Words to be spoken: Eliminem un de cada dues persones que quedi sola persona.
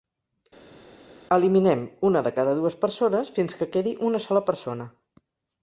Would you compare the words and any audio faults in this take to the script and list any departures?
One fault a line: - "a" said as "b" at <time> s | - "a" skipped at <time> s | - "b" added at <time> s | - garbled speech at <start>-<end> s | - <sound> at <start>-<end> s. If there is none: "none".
- "un" said as "una" at 2.1 s
- "fins" added at 3.4 s
- "una" added at 4.1 s